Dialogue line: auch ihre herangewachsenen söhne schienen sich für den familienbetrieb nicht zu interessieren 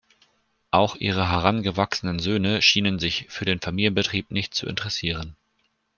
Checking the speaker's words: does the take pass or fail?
pass